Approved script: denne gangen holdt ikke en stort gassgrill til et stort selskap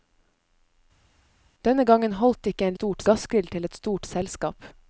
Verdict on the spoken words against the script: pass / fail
pass